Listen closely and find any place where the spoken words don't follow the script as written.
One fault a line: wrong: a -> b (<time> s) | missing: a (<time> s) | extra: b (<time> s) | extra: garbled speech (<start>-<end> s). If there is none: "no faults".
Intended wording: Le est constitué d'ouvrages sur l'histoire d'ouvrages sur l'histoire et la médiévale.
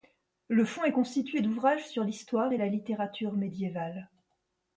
extra: fonds (0.7 s)
missing: d'ouvrages sur l'histoire (2.5 s)
extra: littérature (2.7 s)